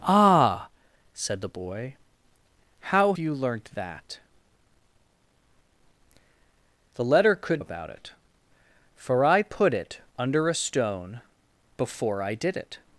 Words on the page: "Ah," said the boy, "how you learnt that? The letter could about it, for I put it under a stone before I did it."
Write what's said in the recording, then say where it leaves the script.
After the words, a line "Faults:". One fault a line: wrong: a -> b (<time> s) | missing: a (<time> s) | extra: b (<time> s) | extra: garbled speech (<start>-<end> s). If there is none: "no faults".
"Ah," said the boy, "how you learnt that? The letter could about it, for I put it under a stone before I did it."
Faults:
no faults